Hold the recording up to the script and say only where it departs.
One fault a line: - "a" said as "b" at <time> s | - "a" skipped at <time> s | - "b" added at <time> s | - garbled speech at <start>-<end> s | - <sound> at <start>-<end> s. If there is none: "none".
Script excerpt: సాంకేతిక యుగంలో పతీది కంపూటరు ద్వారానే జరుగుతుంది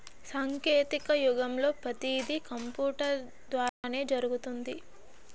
- dropout at 3.7-3.8 s